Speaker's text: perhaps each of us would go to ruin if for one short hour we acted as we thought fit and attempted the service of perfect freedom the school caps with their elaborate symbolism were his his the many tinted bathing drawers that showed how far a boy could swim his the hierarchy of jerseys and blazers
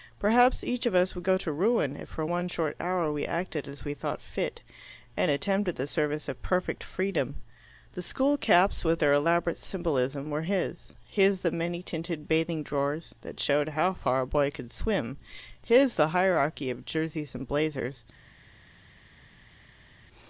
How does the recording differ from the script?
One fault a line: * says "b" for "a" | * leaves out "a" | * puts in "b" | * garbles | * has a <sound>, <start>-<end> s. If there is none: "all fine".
all fine